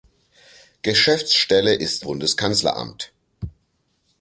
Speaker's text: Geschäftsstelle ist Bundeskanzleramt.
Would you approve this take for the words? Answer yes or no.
yes